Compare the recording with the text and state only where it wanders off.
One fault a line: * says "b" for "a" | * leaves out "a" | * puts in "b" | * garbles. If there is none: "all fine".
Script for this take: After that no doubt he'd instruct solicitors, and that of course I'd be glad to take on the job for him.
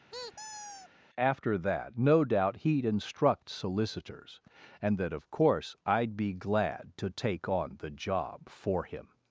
all fine